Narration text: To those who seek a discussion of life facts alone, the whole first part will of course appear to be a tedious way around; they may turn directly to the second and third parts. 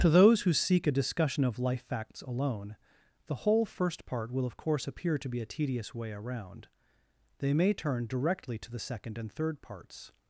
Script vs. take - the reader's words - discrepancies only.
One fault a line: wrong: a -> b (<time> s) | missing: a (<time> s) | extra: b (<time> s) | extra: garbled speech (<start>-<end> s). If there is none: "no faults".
no faults